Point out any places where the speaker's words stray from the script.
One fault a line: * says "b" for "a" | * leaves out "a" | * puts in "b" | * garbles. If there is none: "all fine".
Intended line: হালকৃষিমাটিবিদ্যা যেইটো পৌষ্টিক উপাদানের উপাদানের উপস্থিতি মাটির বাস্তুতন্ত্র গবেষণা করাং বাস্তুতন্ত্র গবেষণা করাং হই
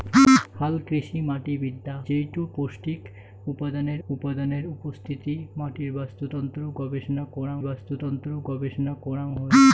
all fine